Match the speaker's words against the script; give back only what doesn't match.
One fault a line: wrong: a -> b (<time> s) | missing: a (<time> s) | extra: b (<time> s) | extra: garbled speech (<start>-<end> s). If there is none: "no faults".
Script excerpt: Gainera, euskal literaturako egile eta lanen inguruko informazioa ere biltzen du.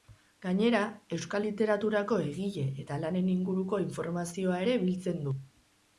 no faults